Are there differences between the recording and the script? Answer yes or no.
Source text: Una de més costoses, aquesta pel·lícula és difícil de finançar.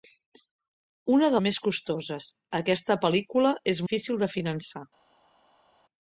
no